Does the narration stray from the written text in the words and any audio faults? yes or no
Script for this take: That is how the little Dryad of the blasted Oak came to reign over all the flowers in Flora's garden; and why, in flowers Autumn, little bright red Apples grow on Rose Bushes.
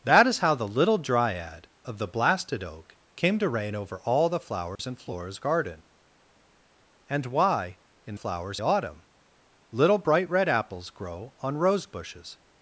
yes